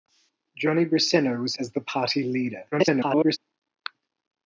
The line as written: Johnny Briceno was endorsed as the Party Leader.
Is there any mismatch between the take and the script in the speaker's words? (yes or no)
yes